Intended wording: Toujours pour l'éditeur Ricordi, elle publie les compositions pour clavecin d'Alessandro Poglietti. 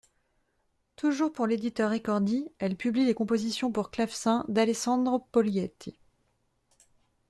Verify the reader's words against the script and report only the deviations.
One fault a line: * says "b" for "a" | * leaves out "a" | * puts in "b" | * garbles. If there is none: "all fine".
all fine